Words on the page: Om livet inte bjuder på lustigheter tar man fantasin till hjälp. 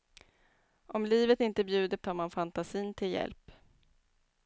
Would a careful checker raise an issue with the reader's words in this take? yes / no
yes